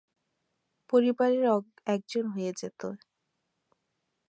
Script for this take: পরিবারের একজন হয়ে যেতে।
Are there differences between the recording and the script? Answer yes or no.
no